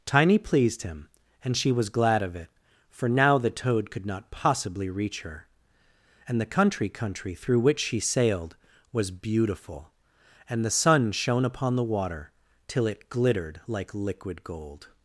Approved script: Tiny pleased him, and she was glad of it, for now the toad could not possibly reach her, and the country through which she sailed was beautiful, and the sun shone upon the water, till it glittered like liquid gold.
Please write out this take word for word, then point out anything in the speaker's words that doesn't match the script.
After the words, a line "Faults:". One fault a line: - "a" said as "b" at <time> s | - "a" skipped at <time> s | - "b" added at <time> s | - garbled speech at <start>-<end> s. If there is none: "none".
Tiny pleased him, and she was glad of it, for now the toad could not possibly reach her, and the country country through which she sailed was beautiful, and the sun shone upon the water, till it glittered like liquid gold.
Faults:
- "country" added at 6.9 s